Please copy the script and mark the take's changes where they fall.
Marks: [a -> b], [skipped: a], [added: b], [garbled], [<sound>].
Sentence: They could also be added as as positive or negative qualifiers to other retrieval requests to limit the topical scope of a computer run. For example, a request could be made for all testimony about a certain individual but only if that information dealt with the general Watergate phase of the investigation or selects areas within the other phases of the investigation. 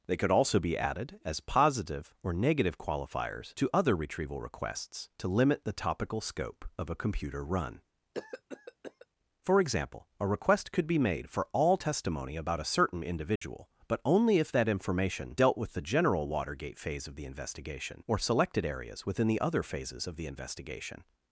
They could also be added as [skipped: as] positive or negative qualifiers to other retrieval requests to limit the topical scope of a computer run. [cough] For example, a request could be made for all testimony about a certain individual [dropout] but only if that information dealt with the general Watergate phase of the investigation or [selects -> selected] areas within the other phases of the investigation.